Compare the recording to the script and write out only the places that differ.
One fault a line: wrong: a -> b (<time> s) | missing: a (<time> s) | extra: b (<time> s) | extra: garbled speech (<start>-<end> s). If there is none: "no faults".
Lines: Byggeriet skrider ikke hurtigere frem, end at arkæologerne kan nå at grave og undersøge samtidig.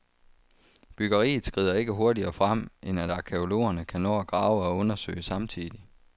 no faults